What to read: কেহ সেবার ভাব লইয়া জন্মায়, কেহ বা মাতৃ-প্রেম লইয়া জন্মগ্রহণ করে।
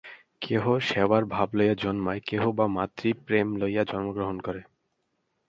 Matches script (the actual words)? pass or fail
pass